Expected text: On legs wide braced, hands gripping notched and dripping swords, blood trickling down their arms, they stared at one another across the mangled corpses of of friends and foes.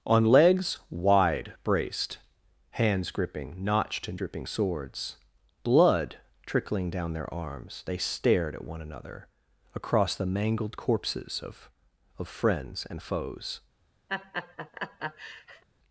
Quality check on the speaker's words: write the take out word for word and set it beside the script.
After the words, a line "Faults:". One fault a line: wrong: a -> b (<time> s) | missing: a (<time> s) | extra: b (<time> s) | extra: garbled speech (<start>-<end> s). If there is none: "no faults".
On legs wide braced, hands gripping notched and dripping swords, blood trickling down their arms, they stared at one another across the mangled corpses of of friends and foes.
Faults:
no faults